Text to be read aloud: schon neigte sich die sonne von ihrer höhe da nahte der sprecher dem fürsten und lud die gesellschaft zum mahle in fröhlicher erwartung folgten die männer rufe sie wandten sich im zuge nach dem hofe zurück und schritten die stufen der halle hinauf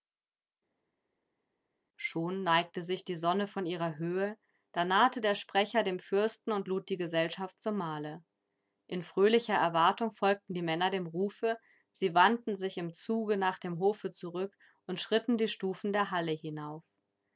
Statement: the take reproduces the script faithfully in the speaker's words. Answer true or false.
false